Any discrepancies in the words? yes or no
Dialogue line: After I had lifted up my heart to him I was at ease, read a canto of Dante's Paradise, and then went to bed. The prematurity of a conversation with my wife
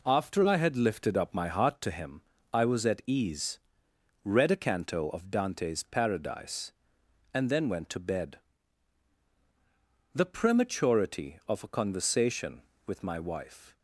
no